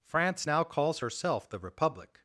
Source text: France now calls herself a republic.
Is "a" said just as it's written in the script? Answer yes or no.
no